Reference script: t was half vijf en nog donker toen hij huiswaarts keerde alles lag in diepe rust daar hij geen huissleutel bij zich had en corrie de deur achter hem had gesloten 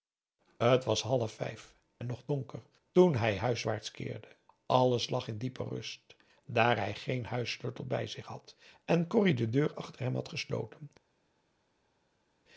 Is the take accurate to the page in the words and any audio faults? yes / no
yes